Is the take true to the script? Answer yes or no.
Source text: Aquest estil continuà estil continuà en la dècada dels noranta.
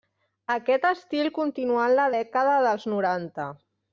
no